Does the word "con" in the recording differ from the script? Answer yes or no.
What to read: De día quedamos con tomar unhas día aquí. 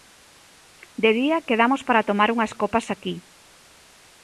yes